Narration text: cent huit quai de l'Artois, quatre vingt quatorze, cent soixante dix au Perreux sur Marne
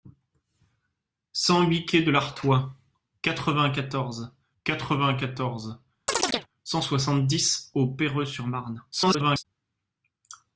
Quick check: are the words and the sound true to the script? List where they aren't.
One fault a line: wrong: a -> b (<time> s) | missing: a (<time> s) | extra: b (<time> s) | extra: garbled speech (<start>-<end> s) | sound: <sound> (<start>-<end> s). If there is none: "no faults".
extra: quatre vingt quatorze (4.6 s)
sound: chirp (6.1-6.5 s)
extra: garbled speech (8.9-9.5 s)